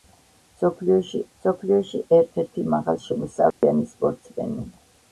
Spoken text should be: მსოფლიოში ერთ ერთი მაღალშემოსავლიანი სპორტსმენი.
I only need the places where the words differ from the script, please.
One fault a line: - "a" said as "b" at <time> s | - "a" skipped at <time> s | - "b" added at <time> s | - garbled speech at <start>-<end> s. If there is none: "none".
- "მსოფლიოში" added at 1.4 s